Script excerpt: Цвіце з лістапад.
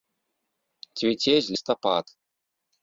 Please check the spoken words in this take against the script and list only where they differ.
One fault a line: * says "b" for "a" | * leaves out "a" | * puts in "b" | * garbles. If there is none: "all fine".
all fine